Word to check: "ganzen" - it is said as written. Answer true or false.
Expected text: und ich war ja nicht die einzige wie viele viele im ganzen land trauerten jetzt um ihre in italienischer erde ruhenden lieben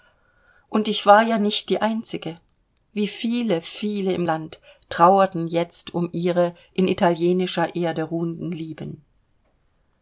false